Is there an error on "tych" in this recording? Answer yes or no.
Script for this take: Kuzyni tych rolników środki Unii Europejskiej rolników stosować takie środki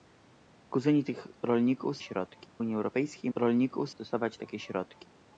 no